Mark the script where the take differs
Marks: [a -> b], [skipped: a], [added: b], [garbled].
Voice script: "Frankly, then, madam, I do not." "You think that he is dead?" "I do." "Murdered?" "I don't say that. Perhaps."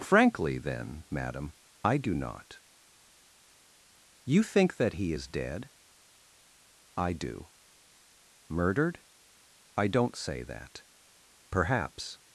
"Frankly, then, madam, I do not." "You think that he is dead?" "I do." "Murdered?" "I don't say that. Perhaps."